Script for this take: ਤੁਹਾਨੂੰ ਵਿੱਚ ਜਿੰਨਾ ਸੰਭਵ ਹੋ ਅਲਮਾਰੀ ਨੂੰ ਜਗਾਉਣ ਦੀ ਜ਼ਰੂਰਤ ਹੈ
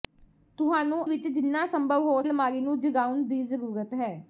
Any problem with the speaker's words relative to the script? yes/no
no